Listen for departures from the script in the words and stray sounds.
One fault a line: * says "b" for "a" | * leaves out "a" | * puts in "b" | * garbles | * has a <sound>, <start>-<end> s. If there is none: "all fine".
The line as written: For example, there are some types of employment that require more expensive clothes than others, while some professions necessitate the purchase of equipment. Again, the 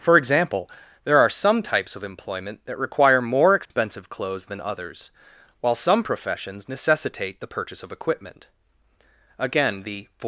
* has a dropout, 3.7-3.7 s